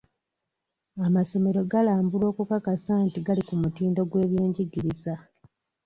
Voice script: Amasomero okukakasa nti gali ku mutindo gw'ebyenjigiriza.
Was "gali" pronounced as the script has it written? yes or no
yes